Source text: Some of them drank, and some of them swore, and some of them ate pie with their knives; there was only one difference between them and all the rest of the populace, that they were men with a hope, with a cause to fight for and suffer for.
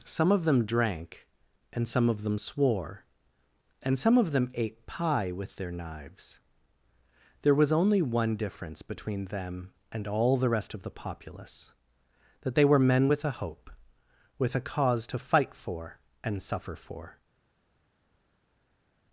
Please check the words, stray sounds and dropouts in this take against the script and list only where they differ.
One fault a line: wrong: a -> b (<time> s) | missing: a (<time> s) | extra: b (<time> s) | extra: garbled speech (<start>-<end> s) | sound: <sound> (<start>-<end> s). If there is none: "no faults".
no faults